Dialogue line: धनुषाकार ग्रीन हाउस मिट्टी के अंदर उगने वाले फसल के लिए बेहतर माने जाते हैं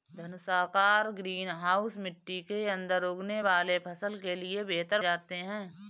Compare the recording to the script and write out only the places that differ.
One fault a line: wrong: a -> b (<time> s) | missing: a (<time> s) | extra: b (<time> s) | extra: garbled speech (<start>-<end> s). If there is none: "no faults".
missing: माने (5.0 s)